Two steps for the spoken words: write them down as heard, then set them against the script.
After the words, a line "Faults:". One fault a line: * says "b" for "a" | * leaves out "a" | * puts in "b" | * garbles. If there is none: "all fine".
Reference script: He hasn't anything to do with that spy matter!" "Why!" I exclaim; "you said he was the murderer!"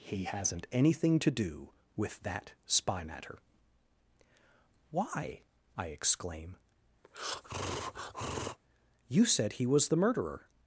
He hasn't anything to do with that spy matter!" "Why!" I exclaim; "you said he was the murderer!"
Faults:
all fine